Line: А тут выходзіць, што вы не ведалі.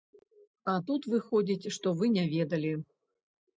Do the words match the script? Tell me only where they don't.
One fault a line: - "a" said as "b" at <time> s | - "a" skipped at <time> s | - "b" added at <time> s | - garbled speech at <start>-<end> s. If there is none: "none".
none